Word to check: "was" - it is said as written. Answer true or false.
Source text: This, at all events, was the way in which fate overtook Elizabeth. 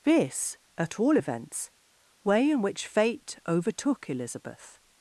false